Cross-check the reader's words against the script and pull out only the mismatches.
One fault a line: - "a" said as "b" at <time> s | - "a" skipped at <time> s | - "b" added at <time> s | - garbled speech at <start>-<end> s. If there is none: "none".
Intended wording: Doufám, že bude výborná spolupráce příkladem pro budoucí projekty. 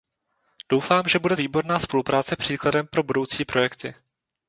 none